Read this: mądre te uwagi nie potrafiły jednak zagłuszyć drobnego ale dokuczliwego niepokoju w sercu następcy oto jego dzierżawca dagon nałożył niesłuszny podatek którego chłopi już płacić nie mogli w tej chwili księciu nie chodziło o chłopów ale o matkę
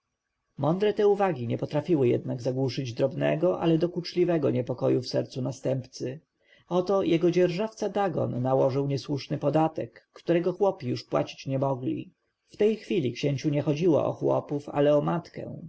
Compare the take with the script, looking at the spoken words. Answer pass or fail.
pass